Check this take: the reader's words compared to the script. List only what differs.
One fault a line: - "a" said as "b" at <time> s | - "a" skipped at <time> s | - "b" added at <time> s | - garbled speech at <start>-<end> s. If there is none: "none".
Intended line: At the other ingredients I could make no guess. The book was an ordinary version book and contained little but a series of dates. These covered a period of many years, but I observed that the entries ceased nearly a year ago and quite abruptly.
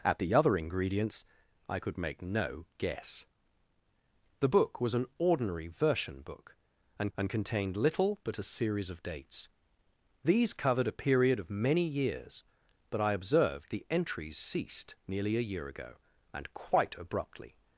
- "and" added at 7.2 s
- "that" skipped at 13.7 s